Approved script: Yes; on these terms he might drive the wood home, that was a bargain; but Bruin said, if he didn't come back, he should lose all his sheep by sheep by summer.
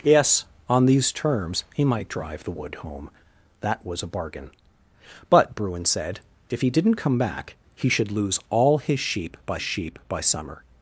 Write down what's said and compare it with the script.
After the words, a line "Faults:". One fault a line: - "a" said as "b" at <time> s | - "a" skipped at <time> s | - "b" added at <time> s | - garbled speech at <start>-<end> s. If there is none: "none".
Yes; on these terms he might drive the wood home, that was a bargain; but Bruin said, if he didn't come back, he should lose all his sheep by sheep by summer.
Faults:
none